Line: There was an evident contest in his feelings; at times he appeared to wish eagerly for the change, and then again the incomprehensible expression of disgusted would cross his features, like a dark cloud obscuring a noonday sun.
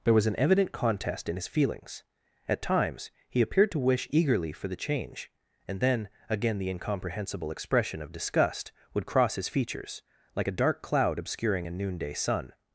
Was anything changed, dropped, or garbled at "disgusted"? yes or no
yes